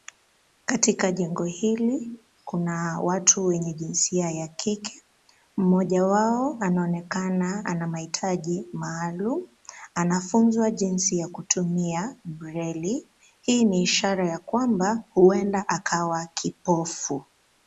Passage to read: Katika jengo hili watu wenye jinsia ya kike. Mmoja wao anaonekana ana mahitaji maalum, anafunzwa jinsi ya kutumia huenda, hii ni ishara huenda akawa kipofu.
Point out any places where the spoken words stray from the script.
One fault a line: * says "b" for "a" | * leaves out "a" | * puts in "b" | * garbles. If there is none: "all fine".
* puts in "kuna"
* says "breli" for "huenda"
* puts in "ya kwamba"